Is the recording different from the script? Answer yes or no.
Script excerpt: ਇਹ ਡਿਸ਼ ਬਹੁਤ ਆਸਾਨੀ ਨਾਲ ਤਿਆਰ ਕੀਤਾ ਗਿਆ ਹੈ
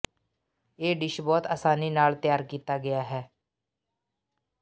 no